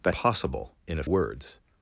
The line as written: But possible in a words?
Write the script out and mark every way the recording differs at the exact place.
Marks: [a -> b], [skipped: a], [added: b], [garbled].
But possible in a words?